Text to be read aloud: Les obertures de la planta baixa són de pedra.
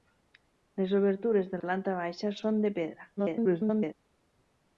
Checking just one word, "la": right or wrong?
wrong